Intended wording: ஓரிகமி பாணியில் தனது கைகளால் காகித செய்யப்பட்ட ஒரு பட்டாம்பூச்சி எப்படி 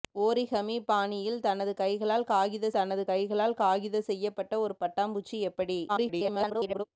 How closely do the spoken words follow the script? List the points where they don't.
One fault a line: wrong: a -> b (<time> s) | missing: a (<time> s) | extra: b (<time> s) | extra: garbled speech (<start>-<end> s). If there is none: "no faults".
extra: தனது கைகளால் காகித (2.7 s)
extra: garbled speech (5.9-6.8 s)